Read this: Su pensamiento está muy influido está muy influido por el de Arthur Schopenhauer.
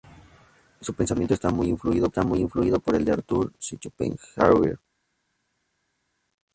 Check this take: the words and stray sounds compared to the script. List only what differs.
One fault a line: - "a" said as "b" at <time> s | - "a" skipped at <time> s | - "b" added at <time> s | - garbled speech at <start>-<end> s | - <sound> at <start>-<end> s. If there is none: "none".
none